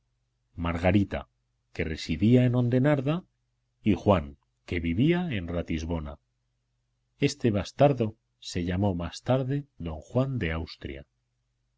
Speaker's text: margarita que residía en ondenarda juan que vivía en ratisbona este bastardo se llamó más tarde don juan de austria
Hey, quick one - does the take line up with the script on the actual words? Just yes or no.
no